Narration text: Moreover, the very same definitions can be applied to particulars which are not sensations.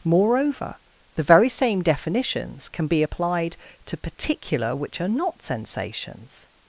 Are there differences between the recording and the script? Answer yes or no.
yes